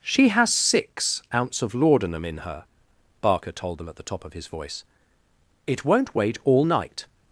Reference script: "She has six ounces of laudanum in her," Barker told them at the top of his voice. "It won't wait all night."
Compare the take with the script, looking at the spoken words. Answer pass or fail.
fail